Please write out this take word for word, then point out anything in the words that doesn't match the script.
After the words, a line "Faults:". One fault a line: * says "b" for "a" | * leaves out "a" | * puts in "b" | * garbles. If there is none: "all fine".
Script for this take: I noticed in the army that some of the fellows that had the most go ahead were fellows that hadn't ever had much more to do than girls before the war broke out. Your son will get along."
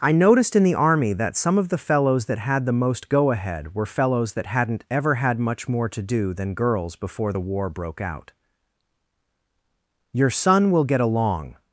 I noticed in the army that some of the fellows that had the most go ahead were fellows that hadn't ever had much more to do than girls before the war broke out. Your son will get along."
Faults:
all fine